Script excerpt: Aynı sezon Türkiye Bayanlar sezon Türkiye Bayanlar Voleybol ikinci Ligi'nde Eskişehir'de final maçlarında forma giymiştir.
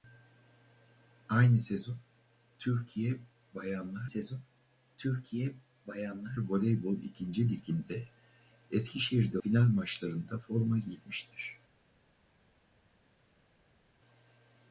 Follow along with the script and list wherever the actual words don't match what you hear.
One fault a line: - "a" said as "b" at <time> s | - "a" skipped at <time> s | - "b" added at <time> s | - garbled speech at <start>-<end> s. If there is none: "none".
none